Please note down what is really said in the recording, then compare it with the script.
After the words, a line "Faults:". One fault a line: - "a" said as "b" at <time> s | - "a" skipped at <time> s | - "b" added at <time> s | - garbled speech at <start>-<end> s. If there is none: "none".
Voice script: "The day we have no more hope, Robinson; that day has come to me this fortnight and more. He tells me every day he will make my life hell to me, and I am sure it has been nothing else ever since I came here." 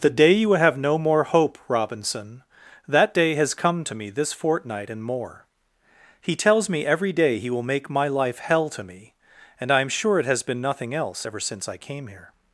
"The day you have no more hope, Robinson; that day has come to me this fortnight and more. He tells me every day he will make my life hell to me, and I am sure it has been nothing else ever since I came here."
Faults:
- "we" said as "you" at 0.3 s